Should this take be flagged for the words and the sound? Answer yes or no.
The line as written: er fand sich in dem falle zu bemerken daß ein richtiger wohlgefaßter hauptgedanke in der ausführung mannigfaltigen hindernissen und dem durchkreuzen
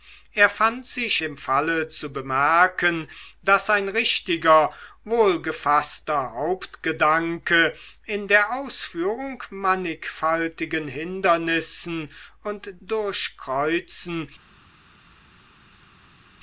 yes